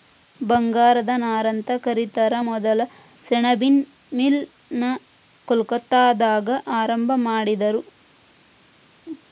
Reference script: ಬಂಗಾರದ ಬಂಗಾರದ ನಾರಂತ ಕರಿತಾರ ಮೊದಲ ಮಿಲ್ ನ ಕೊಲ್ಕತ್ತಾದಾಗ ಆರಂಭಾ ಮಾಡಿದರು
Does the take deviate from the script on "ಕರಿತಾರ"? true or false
false